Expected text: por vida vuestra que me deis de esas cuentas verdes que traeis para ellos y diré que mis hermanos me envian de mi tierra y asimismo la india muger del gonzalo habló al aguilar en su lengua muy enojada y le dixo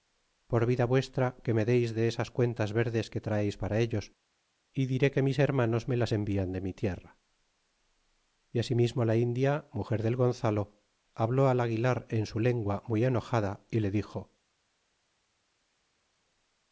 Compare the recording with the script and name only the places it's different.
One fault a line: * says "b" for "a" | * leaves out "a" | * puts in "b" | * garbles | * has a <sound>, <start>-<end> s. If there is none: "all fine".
* puts in "las"